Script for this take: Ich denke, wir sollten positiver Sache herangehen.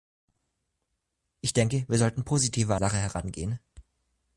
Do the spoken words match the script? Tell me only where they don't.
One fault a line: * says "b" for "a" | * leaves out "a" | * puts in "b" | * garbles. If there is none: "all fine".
all fine